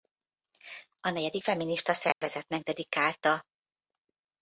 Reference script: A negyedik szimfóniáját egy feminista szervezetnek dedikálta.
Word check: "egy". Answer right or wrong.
wrong